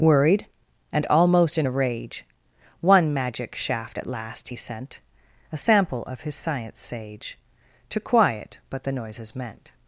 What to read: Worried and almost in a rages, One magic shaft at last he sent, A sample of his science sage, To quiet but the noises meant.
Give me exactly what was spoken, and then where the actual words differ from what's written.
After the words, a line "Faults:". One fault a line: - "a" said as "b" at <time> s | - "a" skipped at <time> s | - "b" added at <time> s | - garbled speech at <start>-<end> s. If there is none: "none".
Worried and almost in a rage, One magic shaft at last he sent, A sample of his science sage, To quiet but the noises meant.
Faults:
- "rages" said as "rage" at 1.7 s